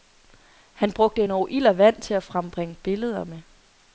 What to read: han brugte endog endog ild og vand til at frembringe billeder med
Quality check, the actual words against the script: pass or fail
fail